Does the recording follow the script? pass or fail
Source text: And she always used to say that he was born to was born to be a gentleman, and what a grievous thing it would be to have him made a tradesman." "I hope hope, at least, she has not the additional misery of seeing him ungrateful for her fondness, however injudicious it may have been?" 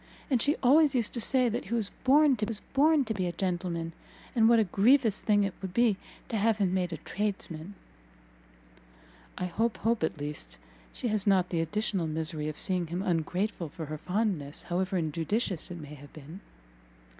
pass